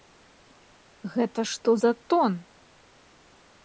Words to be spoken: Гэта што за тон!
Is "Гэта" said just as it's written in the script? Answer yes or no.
yes